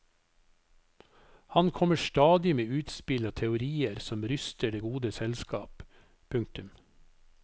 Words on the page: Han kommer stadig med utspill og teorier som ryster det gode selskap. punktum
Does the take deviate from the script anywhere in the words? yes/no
no